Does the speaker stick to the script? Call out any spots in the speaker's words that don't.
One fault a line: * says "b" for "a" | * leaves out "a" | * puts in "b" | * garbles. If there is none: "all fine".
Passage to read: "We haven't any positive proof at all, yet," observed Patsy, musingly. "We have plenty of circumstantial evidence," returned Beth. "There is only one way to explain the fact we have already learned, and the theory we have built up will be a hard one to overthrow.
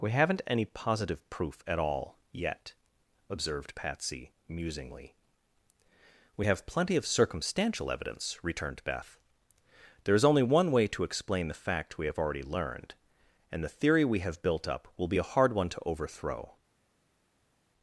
all fine